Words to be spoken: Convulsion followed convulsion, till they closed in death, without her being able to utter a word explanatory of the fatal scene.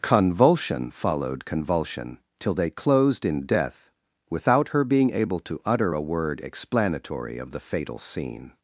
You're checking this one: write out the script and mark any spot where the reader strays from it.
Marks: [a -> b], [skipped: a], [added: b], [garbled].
Convulsion followed convulsion, till they closed in death, without her being able to utter a word explanatory of the fatal scene.